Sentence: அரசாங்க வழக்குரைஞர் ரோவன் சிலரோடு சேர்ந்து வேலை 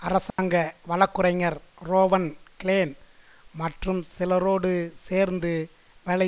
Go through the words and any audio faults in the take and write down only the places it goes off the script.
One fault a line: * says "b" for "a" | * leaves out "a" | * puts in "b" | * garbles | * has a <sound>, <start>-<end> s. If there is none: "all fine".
* has a dropout, 0.3-0.4 s
* puts in "கிளேன் மற்றும்"